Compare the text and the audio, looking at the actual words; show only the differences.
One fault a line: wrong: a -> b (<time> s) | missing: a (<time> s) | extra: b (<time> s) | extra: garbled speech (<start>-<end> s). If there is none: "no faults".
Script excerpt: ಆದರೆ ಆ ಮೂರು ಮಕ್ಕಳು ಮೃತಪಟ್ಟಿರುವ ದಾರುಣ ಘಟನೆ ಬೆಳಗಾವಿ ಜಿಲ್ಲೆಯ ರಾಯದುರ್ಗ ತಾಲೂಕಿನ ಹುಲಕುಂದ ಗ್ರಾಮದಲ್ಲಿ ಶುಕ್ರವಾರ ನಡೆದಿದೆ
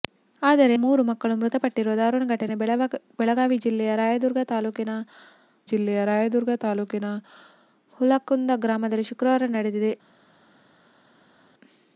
missing: ಆ (0.8 s)
extra: ಜಿಲ್ಲೆಯ ರಾಯದುರ್ಗ ತಾಲೂಕಿನ (5.7 s)